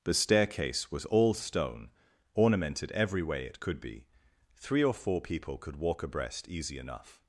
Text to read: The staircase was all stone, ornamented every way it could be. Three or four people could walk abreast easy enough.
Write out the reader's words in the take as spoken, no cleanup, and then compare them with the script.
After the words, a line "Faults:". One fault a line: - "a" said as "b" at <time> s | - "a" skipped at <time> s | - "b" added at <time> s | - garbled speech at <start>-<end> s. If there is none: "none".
The staircase was all stone, ornamented every way it could be. Three or four people could walk abreast easy enough.
Faults:
none